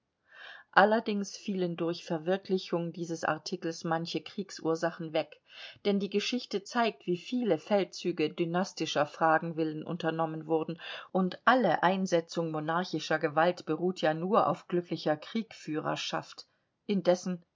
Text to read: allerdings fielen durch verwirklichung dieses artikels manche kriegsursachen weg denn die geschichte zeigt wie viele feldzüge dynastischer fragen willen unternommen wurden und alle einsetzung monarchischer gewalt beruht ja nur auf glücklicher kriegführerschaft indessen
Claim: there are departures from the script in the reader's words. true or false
false